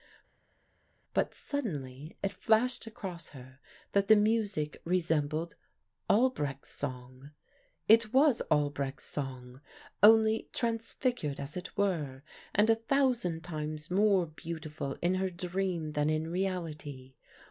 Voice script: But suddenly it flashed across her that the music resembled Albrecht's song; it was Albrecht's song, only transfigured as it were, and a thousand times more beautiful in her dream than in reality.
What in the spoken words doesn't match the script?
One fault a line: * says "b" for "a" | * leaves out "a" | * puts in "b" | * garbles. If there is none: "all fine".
all fine